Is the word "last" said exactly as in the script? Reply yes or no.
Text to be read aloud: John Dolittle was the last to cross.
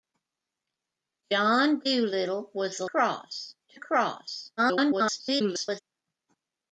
no